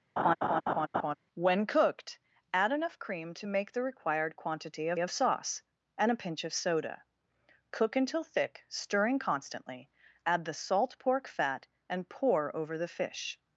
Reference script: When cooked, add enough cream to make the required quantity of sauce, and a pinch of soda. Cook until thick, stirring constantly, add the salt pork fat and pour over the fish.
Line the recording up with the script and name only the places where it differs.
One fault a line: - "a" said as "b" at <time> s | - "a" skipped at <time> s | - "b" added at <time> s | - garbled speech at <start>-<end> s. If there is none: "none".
- "of" added at 5.0 s